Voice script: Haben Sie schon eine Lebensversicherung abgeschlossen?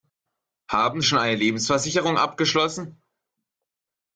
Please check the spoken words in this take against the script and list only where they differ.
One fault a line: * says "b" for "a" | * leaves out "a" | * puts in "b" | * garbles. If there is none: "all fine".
* leaves out "Sie"